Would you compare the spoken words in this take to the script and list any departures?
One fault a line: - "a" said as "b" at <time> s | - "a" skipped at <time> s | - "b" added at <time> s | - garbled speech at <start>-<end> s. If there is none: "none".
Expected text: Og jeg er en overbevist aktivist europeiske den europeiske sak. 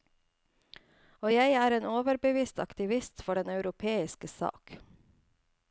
- "europeiske" said as "for" at 3.2 s